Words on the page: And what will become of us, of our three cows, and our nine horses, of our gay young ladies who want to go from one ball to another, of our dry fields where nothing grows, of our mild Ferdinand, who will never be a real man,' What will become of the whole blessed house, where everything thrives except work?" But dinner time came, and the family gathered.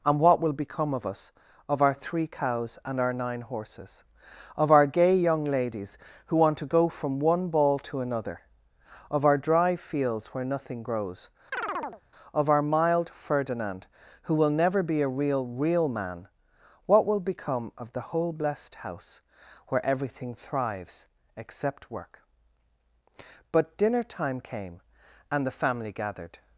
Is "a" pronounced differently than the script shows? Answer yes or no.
no